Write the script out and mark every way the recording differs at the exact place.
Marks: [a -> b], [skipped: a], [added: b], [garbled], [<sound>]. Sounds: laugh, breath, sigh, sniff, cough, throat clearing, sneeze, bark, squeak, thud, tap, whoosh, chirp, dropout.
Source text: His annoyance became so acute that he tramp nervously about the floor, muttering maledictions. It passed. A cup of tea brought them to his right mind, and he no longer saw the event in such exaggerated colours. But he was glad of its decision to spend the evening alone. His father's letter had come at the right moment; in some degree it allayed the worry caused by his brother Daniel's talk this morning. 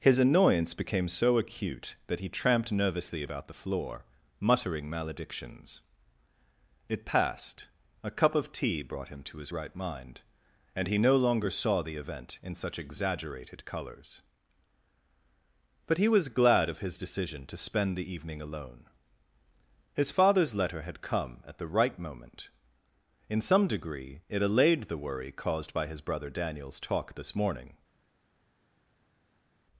His annoyance became so acute that he [tramp -> tramped] nervously about the floor, muttering maledictions. It passed. A cup of tea brought [them -> him] to his right mind, and he no longer saw the event in such exaggerated colours. But he was glad of [its -> his] decision to spend the evening alone. His father's letter had come at the right moment; in some degree it allayed the worry caused by his brother Daniel's talk this morning.